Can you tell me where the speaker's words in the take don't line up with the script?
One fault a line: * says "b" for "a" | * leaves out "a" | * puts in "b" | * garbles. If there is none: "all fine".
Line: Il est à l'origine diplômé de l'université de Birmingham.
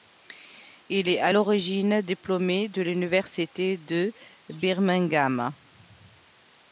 all fine